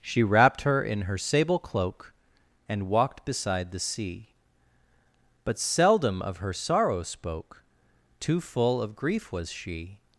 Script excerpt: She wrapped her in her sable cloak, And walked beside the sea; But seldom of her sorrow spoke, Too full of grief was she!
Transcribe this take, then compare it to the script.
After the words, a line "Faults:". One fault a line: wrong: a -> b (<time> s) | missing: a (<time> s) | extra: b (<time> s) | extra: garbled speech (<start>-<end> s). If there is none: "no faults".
She wrapped her in her sable cloak, And walked beside the sea; But seldom of her sorrow spoke, Too full of grief was she!
Faults:
no faults